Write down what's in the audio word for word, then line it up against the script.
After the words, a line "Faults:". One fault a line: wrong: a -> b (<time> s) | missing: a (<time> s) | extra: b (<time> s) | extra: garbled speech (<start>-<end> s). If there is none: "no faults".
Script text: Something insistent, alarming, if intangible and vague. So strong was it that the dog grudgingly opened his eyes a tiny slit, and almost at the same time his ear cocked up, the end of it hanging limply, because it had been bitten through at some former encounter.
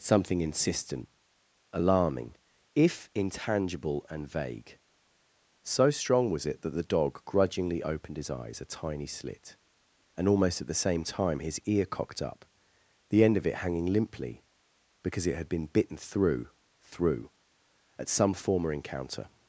Something insistent, alarming, if intangible and vague. So strong was it that the dog grudgingly opened his eyes a tiny slit, and almost at the same time his ear cocked up, the end of it hanging limply, because it had been bitten through through at some former encounter.
Faults:
extra: through (16.8 s)